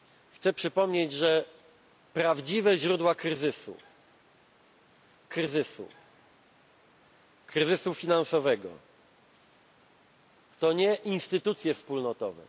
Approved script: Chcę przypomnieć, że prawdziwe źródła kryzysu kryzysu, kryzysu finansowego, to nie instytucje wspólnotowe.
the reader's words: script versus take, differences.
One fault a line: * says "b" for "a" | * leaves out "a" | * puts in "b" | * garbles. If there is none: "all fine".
all fine